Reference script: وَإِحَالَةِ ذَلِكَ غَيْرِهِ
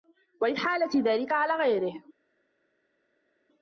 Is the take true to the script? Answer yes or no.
no